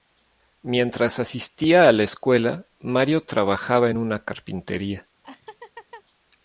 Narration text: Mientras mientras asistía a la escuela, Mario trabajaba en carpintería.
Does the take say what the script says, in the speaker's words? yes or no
no